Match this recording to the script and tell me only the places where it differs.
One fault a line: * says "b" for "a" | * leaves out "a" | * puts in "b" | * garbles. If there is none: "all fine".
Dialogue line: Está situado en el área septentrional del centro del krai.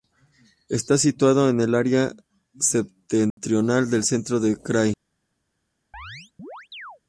all fine